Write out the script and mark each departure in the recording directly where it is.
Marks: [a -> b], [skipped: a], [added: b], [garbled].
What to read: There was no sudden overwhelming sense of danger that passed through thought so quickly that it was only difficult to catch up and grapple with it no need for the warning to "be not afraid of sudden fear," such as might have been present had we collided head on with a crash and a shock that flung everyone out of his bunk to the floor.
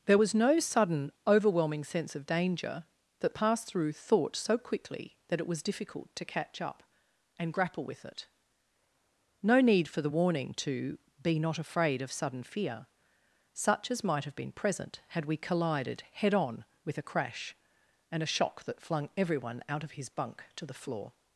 There was no sudden overwhelming sense of danger that passed through thought so quickly that it was [skipped: only] difficult to catch up and grapple with it no need for the warning to "be not afraid of sudden fear," such as might have been present had we collided head on with a crash and a shock that flung everyone out of his bunk to the floor.